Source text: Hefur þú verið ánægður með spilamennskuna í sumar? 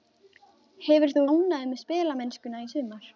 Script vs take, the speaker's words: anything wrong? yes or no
yes